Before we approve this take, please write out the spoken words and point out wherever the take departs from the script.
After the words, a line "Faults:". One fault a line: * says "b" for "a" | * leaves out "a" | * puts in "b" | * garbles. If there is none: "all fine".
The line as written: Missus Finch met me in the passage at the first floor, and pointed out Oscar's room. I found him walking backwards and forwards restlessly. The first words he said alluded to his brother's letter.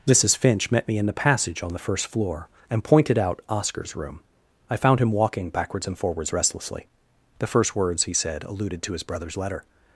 Missus Finch met me in the passage on the first floor, and pointed out Oscar's room. I found him walking backwards and forwards restlessly. The first words he said alluded to his brother's letter.
Faults:
* says "on" for "at"